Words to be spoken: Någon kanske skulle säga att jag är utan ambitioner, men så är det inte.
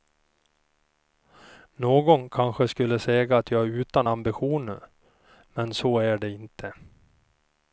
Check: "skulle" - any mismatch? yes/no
no